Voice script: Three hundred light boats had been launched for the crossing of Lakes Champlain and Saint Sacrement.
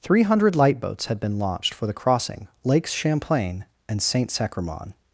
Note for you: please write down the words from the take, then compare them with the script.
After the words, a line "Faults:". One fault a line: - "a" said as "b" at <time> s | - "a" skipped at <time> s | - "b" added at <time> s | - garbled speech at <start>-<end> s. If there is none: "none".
Three hundred light boats had been launched for the crossing Lakes Champlain and Saint Sacrement.
Faults:
- "of" skipped at 2.5 s